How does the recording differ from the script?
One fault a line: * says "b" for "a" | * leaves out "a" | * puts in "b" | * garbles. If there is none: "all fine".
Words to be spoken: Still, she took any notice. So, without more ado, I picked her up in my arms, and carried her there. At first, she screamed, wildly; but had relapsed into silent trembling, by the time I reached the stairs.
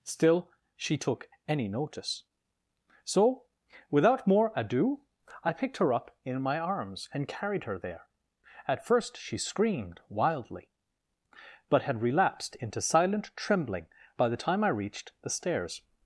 all fine